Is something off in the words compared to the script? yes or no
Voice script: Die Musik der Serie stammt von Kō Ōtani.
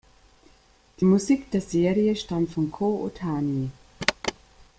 no